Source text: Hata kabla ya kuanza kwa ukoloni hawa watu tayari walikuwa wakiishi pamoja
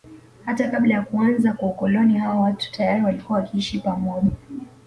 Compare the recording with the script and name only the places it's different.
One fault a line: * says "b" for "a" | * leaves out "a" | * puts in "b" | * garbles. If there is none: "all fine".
all fine